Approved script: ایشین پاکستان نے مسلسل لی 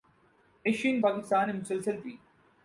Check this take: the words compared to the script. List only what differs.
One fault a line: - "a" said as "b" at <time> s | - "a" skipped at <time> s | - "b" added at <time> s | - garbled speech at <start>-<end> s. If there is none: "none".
none